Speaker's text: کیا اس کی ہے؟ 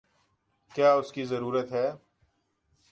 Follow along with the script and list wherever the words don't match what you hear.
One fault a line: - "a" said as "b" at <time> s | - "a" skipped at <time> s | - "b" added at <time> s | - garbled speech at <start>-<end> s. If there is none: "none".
- "ضرورت" added at 1.2 s